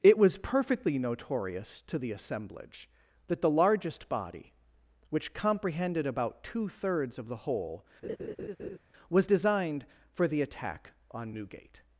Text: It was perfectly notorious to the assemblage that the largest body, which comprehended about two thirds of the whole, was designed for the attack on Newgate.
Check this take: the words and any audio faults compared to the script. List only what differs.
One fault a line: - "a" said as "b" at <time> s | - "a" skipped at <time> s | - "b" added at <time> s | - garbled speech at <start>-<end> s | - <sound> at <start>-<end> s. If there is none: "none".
- laugh at 8.0-8.8 s